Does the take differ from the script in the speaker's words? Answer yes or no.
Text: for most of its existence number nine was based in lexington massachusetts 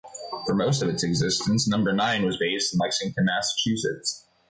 no